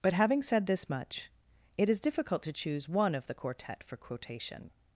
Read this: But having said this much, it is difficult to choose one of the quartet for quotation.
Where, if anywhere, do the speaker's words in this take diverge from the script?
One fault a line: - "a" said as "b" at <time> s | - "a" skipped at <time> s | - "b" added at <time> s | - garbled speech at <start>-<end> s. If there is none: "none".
none